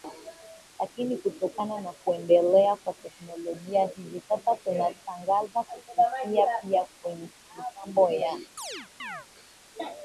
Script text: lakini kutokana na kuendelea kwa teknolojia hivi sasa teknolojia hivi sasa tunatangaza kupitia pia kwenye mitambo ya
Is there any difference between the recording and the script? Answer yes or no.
yes